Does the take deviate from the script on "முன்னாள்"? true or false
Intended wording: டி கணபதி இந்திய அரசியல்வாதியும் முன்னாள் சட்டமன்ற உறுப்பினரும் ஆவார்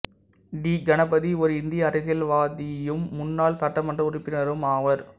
false